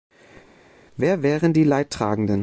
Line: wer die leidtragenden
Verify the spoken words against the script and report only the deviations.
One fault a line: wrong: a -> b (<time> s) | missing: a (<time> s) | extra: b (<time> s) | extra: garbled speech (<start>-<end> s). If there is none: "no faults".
extra: wären (1.2 s)